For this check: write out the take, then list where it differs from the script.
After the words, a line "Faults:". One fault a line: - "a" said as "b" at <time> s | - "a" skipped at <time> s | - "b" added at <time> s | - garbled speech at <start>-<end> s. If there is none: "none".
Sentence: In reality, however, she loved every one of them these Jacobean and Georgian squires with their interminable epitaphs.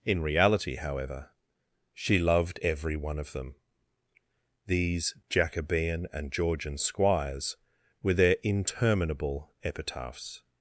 In reality, however, she loved every one of them these Jacobean and Georgian squires were their interminable epitaphs.
Faults:
- "with" said as "were" at 8.0 s